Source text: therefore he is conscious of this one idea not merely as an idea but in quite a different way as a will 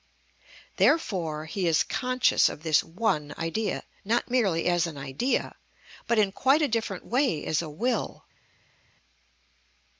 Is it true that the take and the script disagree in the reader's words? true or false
false